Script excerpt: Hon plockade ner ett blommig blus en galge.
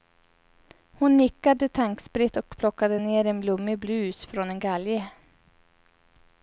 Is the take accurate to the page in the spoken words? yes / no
no